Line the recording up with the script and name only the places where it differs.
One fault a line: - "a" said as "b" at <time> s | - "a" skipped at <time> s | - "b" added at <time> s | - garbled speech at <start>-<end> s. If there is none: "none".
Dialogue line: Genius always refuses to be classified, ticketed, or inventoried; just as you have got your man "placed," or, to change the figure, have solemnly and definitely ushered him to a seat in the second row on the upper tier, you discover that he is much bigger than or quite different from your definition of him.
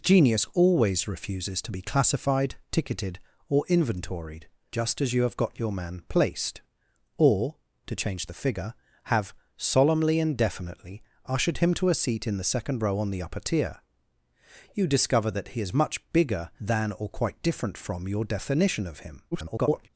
- garbled speech at 19.3-19.9 s